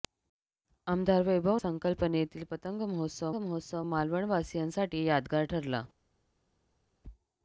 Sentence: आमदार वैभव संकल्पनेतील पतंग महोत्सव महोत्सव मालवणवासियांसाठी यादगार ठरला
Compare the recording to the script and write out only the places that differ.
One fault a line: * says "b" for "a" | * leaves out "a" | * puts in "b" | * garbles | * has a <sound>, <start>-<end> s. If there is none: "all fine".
all fine